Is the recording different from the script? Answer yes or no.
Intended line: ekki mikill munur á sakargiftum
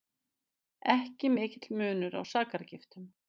no